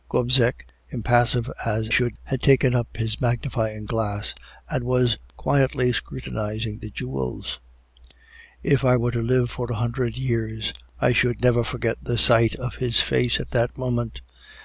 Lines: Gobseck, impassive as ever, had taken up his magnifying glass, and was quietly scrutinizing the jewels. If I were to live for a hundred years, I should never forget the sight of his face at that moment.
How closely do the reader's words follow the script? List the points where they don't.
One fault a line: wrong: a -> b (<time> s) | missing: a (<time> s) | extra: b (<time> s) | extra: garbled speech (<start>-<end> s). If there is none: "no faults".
wrong: ever -> should (1.9 s)